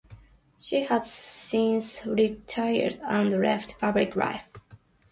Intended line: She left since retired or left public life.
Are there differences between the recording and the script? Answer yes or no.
yes